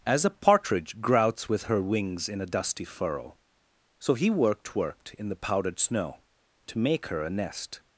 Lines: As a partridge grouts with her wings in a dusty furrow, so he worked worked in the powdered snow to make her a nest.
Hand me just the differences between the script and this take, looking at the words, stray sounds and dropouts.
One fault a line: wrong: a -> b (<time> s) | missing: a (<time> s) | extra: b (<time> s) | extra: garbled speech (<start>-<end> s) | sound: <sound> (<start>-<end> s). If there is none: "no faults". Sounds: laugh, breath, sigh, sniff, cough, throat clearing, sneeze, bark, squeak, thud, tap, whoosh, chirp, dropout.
no faults